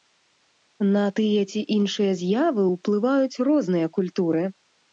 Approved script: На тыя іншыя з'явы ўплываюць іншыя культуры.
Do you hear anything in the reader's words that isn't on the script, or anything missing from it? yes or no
yes